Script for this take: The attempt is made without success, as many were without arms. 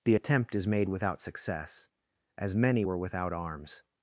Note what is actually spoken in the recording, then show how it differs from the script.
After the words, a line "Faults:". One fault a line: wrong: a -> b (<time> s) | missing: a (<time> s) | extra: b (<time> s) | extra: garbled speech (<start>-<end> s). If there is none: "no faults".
The attempt is made without success, as many were without arms.
Faults:
no faults